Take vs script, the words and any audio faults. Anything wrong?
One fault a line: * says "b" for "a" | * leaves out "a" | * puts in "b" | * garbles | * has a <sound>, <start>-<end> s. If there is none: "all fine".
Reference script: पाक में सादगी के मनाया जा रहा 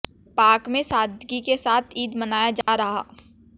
* puts in "साथ ईद"
* has a dropout, 2.6-2.7 s